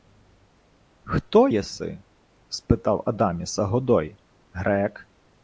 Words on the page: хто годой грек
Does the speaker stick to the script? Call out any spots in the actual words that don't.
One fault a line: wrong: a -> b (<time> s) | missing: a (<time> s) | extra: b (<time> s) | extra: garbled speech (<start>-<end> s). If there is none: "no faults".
extra: єси спитав адаміса (1.5 s)